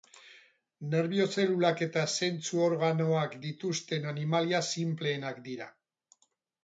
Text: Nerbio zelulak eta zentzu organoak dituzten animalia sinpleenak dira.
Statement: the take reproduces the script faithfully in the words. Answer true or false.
true